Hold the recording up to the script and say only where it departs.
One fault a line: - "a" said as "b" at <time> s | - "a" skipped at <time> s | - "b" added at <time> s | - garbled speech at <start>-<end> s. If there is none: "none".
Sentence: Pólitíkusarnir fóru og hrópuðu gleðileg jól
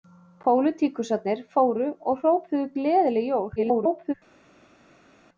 - garbled speech at 3.6-4.1 s